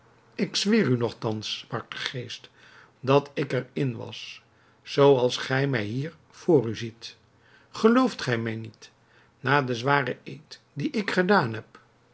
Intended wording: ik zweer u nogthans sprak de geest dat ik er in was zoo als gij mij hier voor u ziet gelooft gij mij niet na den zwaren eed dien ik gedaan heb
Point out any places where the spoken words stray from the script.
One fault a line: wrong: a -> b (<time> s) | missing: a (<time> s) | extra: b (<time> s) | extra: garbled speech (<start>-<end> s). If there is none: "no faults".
no faults